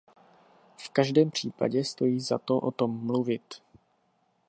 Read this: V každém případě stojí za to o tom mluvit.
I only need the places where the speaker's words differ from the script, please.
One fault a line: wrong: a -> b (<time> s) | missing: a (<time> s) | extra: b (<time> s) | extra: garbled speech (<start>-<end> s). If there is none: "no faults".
no faults